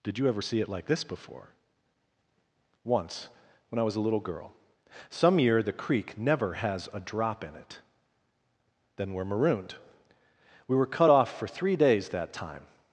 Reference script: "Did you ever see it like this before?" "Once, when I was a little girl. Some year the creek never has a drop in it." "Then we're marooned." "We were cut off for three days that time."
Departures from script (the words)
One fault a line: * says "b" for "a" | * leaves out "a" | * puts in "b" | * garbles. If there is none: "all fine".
all fine